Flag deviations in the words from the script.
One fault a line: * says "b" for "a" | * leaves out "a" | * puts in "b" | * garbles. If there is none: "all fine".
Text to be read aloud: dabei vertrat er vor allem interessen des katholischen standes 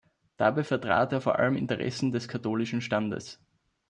all fine